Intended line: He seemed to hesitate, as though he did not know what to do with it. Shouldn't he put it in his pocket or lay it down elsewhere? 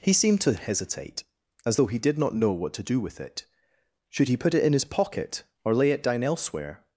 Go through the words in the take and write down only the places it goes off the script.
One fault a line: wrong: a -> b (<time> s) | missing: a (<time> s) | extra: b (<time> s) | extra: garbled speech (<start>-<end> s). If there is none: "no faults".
wrong: Shouldn't -> Should (4.1 s)